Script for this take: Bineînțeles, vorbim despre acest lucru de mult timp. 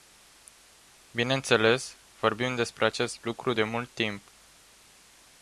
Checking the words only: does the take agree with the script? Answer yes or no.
yes